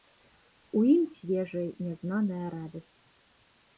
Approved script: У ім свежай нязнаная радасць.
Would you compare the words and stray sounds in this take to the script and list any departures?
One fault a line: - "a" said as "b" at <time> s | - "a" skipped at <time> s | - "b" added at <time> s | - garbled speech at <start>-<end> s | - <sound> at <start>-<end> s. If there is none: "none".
none